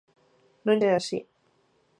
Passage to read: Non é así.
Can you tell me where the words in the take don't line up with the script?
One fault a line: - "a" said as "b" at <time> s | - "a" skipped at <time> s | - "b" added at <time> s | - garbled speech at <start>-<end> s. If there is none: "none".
none